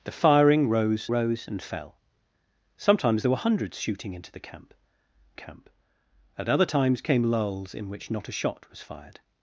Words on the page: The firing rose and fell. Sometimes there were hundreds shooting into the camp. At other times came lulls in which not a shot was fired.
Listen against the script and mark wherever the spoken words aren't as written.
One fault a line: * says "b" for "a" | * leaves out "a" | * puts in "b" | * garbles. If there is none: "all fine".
* puts in "rose"
* puts in "camp"